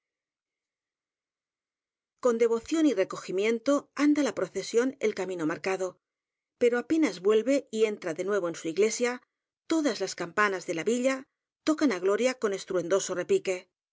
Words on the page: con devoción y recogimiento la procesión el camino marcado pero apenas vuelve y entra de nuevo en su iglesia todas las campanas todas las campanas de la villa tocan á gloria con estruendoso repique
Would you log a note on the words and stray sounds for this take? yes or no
yes